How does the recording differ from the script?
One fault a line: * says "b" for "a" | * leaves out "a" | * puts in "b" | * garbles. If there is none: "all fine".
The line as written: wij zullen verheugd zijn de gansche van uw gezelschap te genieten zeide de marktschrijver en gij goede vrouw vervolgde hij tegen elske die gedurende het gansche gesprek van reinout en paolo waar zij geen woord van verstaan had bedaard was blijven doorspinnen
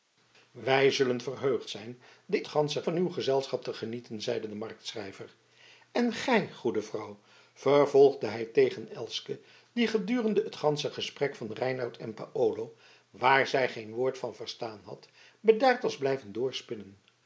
all fine